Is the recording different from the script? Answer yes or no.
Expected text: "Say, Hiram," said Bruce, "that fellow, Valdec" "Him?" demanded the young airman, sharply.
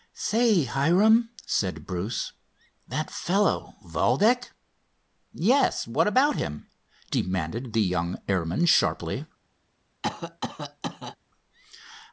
yes